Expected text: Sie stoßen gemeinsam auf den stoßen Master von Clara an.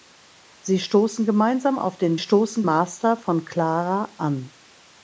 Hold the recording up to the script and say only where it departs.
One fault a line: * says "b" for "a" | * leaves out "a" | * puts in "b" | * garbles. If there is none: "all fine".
all fine